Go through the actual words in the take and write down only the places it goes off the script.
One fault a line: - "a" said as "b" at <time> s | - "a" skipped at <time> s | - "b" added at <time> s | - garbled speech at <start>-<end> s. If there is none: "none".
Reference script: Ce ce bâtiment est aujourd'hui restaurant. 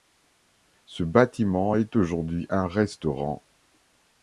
- "ce" skipped at 1.0 s
- "un" added at 2.5 s